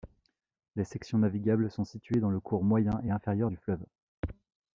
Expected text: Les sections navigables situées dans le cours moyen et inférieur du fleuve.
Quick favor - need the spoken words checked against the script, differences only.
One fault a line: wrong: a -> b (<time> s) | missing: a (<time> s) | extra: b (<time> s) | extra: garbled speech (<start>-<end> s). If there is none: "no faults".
extra: sont (1.7 s)